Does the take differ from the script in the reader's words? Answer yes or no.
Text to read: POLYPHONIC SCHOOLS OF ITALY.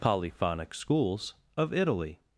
no